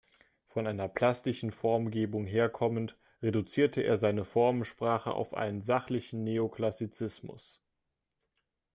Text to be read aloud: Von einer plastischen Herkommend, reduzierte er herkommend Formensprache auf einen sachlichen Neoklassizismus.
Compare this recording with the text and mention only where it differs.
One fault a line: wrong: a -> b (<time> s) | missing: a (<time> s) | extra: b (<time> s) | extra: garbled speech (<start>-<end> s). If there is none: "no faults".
extra: Formgebung (1.5 s)
wrong: herkommend -> seine (4.0 s)